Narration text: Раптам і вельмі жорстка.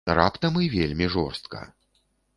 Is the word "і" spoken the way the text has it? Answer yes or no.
yes